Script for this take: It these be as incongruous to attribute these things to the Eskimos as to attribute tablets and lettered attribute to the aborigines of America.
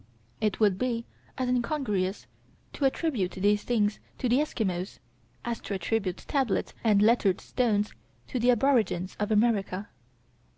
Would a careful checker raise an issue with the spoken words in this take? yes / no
yes